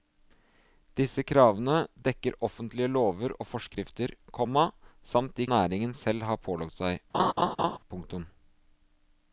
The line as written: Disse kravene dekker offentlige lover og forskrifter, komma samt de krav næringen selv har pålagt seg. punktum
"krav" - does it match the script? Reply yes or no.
no